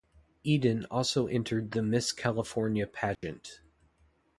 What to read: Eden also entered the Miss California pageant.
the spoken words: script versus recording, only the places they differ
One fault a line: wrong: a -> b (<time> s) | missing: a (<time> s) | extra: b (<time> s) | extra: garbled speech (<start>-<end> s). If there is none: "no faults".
no faults